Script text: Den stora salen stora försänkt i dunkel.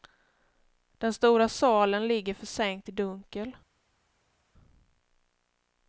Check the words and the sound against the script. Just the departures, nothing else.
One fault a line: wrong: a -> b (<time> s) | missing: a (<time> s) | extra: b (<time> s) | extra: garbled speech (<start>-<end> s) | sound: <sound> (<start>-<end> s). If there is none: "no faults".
wrong: stora -> ligger (2.1 s)